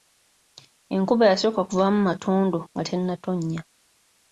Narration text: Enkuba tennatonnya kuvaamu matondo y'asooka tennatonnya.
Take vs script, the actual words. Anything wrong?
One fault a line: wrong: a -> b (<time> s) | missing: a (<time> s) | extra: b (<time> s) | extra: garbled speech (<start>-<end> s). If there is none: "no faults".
wrong: tennatonnya -> y'asooka (1.3 s)
wrong: y'asooka -> nga (2.7 s)